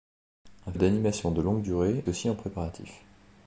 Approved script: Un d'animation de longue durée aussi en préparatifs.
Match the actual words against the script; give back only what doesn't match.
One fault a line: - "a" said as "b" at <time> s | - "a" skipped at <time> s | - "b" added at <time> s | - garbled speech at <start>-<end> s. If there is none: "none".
none